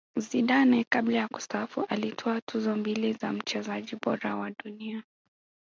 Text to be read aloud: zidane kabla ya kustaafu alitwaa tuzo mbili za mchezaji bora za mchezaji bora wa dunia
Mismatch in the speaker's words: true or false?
true